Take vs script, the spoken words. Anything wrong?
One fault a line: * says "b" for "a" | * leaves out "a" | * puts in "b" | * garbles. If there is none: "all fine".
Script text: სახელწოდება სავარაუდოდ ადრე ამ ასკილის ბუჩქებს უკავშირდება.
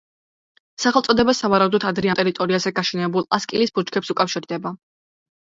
* puts in "ტერიტორიაზე გაშენებულ"